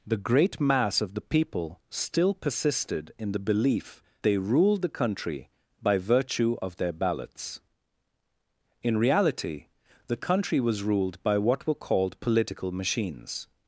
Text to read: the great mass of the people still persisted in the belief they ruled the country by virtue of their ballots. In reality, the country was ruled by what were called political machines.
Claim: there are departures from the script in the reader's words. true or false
false